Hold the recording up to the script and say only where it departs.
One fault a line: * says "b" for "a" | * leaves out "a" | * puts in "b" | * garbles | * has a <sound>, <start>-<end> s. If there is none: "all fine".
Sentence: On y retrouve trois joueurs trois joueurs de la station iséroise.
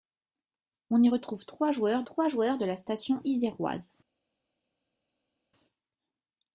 all fine